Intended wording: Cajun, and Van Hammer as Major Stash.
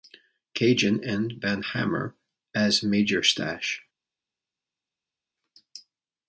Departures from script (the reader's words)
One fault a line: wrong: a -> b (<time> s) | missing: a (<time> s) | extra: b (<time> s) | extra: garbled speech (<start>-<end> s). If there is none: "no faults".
no faults